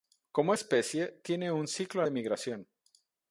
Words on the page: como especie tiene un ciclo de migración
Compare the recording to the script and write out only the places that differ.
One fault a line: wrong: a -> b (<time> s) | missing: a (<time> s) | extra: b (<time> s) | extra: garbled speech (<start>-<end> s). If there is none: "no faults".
no faults